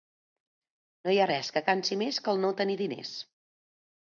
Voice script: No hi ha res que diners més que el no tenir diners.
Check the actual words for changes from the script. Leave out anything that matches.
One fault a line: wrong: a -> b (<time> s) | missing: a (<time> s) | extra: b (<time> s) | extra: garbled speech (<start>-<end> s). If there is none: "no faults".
wrong: diners -> cansi (1.7 s)